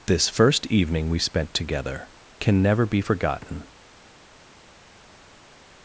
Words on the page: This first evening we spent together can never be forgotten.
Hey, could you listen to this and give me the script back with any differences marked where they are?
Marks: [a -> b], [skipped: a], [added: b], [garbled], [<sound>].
This first evening we spent together can never be forgotten.